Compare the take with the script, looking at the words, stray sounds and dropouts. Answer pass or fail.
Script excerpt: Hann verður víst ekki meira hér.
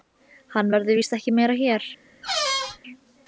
fail